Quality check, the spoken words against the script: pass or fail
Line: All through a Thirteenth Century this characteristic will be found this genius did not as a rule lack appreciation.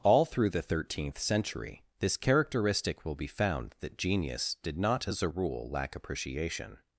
fail